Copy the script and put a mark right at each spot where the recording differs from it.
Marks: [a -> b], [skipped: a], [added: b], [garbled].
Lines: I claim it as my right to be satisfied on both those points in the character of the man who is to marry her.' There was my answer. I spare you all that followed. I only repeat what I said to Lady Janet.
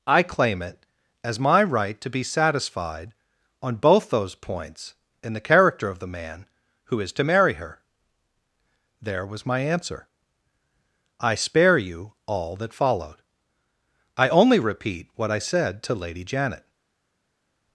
I claim it as my right to be satisfied on both those points in the character of the man who is to marry her.' There was my answer. I spare you all that followed. I only repeat what I said to Lady Janet.